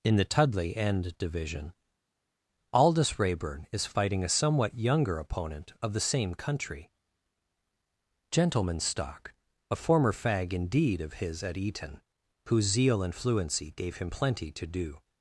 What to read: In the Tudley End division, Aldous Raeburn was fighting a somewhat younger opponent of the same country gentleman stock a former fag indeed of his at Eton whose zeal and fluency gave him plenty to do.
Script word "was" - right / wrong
wrong